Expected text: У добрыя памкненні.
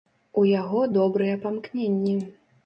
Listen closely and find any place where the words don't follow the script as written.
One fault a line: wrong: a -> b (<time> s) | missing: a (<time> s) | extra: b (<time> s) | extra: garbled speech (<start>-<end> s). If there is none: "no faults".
extra: яго (0.5 s)